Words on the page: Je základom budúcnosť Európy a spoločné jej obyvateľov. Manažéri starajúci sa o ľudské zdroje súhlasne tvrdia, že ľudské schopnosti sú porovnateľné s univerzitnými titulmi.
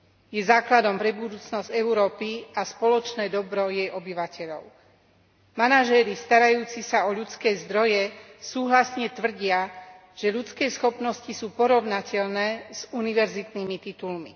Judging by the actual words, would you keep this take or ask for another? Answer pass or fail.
fail